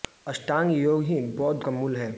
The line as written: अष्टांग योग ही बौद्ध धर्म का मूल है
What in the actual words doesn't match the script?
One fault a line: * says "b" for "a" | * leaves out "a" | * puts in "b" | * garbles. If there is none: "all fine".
* leaves out "धर्म"